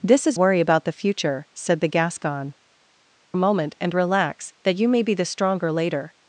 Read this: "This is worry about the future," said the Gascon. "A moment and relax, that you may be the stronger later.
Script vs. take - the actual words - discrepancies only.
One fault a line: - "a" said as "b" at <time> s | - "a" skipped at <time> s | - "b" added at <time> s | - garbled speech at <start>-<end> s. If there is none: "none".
none